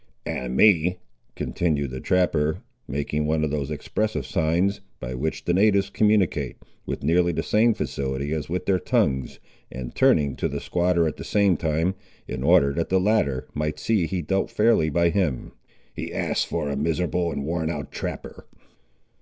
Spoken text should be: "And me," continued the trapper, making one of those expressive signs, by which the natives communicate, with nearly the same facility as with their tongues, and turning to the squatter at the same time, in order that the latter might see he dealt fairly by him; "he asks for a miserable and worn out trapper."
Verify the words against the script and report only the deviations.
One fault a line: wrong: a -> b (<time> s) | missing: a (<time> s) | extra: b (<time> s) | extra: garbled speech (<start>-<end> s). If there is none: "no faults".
no faults